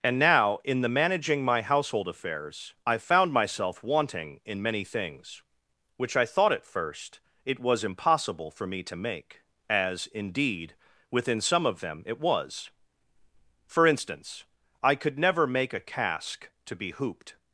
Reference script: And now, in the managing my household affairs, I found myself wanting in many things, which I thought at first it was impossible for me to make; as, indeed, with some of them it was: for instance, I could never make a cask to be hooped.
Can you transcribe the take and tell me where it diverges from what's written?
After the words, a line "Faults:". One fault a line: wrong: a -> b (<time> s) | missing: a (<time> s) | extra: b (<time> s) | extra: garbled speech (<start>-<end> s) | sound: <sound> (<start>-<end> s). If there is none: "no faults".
And now, in the managing my household affairs, I found myself wanting in many things, which I thought at first it was impossible for me to make; as, indeed, within some of them it was: for instance, I could never make a cask to be hooped.
Faults:
wrong: with -> within (11.1 s)